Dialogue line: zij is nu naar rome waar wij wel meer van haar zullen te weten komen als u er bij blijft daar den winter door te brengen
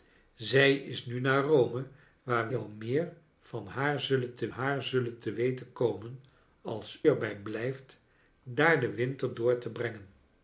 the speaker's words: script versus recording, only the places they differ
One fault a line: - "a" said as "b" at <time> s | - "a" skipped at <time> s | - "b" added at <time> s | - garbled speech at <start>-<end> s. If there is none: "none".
- "wij" skipped at 2.5 s
- "haar zullen te" added at 4.5 s
- "u" skipped at 7.0 s